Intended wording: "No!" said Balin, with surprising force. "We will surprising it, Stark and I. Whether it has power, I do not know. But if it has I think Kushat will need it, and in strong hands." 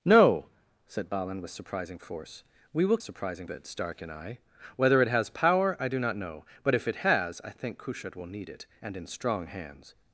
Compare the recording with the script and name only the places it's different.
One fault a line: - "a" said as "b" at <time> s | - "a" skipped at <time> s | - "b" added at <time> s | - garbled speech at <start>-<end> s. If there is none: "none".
none